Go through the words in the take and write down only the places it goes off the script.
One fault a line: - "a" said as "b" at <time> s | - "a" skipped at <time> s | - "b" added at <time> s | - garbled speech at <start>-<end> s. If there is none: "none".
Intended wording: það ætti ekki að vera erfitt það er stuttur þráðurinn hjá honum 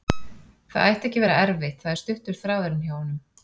none